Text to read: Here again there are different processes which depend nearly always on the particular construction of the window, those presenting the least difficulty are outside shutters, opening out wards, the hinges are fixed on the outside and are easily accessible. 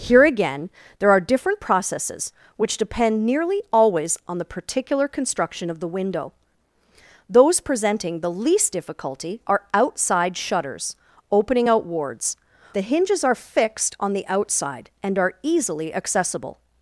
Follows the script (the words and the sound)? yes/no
yes